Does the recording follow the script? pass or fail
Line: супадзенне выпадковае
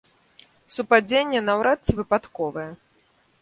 fail